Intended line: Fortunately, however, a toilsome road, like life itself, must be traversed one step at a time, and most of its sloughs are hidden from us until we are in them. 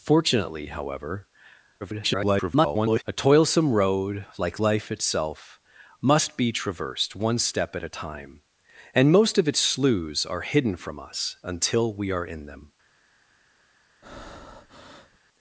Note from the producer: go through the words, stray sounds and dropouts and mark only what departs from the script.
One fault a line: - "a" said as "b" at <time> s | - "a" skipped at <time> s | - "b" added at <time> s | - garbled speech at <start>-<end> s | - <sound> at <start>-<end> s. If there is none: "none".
- garbled speech at 1.8-3.0 s
- breath at 14.0-15.2 s